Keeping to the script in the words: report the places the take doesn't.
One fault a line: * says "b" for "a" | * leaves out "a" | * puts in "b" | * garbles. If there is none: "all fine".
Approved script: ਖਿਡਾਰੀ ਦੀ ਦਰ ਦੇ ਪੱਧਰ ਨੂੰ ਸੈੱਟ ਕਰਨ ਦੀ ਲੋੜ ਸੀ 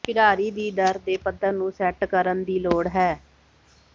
* says "ਹੈ" for "ਸੀ"